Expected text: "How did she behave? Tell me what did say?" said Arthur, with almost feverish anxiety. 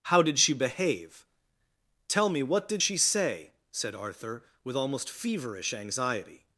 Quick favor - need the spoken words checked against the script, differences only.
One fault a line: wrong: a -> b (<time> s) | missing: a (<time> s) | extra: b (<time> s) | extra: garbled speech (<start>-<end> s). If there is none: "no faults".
extra: she (2.8 s)